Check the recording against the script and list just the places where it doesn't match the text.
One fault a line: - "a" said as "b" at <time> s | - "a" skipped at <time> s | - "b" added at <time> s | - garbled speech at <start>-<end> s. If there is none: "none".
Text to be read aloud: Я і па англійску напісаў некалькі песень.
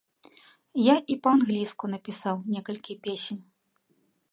none